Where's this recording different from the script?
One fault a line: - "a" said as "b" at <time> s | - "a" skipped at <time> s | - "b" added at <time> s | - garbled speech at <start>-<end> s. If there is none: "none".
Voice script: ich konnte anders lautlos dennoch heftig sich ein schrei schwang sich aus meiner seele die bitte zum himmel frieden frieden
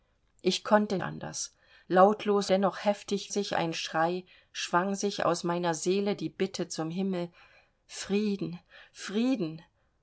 none